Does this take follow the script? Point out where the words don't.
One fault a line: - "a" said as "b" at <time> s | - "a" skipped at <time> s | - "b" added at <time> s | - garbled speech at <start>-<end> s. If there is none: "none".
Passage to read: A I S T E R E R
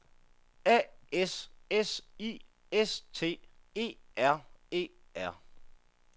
- "S S" added at 1.1 s